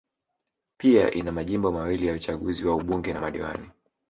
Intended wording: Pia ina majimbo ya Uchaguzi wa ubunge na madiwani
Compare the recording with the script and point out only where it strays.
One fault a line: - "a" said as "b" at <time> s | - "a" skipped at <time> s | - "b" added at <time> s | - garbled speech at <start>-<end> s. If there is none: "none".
- "mawili" added at 1.7 s